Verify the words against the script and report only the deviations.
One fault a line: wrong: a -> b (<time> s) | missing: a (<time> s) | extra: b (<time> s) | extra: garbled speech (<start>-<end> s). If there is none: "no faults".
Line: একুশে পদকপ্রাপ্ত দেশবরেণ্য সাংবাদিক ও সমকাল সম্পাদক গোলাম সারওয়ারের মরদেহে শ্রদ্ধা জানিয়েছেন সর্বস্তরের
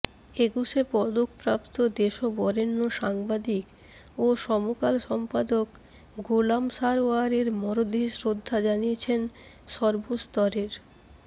no faults